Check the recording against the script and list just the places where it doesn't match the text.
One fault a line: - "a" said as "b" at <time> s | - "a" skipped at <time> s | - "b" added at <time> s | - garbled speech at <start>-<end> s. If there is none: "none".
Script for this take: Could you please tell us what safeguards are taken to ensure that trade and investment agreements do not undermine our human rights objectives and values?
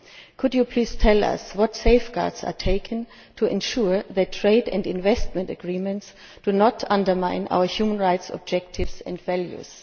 none